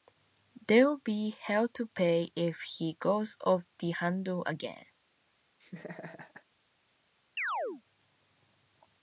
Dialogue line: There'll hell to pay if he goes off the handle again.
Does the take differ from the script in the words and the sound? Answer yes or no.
yes